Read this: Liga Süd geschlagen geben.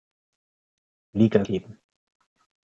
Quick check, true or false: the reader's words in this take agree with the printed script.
false